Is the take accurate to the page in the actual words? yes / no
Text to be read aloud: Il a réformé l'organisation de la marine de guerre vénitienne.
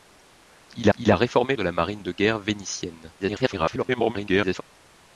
no